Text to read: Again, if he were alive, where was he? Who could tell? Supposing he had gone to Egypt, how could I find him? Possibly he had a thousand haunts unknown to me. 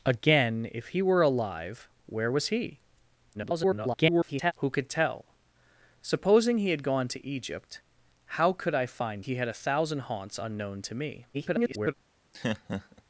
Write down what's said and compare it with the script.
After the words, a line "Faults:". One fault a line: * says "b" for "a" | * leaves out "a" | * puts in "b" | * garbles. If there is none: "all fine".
Again, if he were alive, where was he? [garbled] Who could tell? Supposing he had gone to Egypt, how could I find he had a thousand haunts unknown to me. [garbled]
Faults:
* garbles
* leaves out "him Possibly"
* garbles